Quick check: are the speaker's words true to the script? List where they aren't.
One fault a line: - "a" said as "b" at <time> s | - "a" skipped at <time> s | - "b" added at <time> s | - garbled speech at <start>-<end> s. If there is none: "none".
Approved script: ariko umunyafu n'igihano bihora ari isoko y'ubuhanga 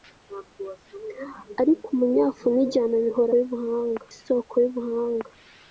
- "ari" said as "y'ubuhanga" at 3.4 s